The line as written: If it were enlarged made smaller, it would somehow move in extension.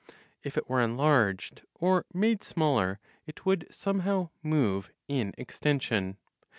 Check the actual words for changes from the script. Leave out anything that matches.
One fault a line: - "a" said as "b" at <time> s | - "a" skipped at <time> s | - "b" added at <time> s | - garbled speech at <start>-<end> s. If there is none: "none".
- "or" added at 1.8 s